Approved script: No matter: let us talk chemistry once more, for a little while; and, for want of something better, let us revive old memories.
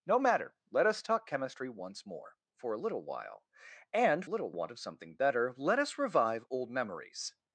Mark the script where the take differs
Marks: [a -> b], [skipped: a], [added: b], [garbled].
No matter: let us talk chemistry once more, for a little while; and, [for -> little] want of something better, let us revive old memories.